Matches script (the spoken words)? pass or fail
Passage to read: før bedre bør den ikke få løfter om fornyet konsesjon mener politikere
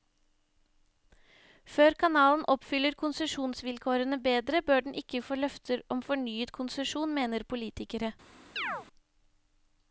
fail